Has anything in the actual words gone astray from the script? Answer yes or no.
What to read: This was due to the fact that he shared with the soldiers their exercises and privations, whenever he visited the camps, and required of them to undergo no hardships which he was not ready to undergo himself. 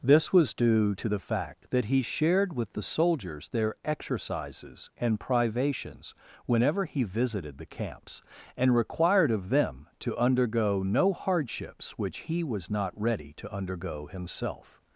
no